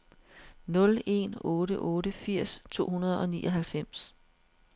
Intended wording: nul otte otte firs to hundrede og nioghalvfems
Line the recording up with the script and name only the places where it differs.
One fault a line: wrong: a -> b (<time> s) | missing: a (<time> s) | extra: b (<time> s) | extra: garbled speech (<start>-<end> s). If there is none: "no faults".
extra: en (1.1 s)